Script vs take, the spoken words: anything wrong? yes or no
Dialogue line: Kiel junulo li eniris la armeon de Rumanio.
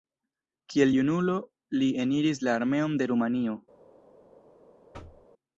no